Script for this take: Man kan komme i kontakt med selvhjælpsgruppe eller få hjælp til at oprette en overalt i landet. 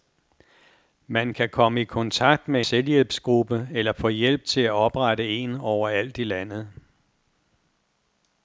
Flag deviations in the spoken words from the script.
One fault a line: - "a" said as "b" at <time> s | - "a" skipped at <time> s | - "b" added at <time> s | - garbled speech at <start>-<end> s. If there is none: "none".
none